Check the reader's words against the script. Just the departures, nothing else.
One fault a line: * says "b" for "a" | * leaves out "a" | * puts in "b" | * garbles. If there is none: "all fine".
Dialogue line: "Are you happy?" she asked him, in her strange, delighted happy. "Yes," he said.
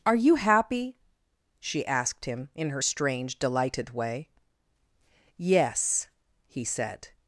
* says "way" for "happy"